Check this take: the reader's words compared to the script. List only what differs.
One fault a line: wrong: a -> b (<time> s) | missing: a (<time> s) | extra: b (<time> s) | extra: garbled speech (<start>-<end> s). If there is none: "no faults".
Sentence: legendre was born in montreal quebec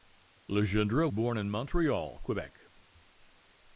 missing: was (1.1 s)